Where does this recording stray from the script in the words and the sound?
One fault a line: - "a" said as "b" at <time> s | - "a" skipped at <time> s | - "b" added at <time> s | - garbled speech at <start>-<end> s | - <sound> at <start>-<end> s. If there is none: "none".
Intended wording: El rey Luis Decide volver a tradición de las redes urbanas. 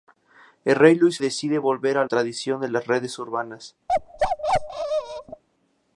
- bark at 3.9-5.4 s